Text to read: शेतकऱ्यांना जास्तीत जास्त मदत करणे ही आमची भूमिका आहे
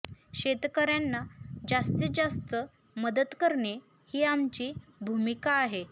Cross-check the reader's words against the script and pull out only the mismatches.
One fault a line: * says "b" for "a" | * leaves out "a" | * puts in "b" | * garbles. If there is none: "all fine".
all fine